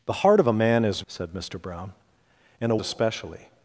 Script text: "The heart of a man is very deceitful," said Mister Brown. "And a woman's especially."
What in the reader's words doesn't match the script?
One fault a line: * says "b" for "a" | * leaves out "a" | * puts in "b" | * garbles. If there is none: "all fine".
* leaves out "very deceitful"
* leaves out "woman's"